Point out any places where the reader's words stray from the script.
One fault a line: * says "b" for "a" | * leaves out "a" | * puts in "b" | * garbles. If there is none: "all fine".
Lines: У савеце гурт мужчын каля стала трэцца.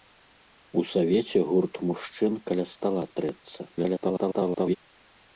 * garbles